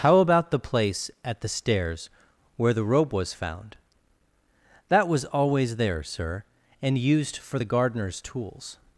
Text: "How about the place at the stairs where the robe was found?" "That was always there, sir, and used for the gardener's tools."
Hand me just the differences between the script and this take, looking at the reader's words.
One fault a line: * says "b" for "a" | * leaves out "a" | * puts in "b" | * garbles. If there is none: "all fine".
all fine